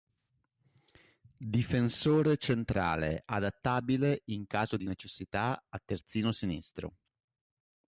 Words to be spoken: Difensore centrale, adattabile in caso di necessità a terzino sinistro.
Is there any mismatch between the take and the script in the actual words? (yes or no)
no